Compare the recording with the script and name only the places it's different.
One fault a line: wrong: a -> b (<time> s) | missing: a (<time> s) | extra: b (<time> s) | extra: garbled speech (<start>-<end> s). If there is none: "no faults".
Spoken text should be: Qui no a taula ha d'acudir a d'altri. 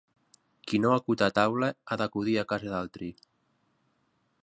extra: acut (0.9 s)
extra: casa (2.5 s)